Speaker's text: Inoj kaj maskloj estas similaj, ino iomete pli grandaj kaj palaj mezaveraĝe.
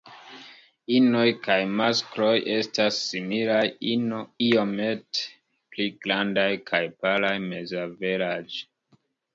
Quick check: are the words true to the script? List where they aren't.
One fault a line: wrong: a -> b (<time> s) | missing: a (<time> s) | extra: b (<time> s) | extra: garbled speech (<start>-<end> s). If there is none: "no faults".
no faults